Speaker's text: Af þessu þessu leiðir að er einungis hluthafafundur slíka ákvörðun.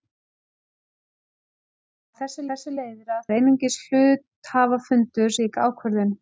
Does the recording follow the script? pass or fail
pass